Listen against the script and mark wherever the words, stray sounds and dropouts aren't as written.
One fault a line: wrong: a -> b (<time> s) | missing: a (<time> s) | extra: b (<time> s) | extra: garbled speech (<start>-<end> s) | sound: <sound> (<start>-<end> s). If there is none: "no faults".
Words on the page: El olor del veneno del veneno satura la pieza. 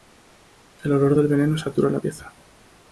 missing: del veneno (1.6 s)